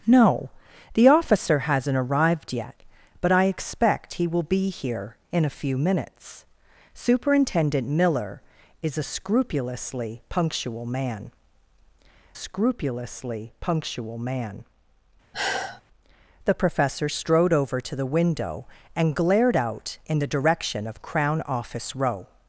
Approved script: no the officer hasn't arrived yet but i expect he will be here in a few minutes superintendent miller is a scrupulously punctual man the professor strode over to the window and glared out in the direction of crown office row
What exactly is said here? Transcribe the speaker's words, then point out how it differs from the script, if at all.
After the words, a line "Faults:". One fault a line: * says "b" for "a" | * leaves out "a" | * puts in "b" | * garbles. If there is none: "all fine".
no the officer hasn't arrived yet but i expect he will be here in a few minutes superintendent miller is a scrupulously punctual man scrupulously punctual man the professor strode over to the window and glared out in the direction of crown office row
Faults:
* puts in "scrupulously punctual man"